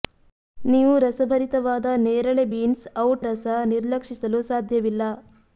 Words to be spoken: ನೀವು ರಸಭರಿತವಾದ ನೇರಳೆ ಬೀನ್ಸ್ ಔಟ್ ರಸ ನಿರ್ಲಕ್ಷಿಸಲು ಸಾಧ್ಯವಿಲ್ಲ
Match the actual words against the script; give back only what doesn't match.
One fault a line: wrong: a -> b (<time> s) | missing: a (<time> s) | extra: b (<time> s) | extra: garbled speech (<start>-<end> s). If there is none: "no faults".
no faults